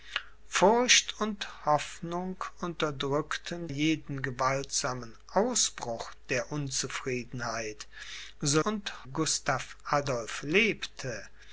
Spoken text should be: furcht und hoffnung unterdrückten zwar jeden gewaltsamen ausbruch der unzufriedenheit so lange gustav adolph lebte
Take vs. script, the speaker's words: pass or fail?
fail